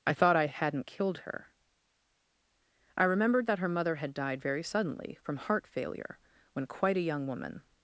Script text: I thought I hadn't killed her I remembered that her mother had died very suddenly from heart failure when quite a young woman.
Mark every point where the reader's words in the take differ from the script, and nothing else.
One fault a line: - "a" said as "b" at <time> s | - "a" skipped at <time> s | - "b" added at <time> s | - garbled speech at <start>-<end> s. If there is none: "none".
none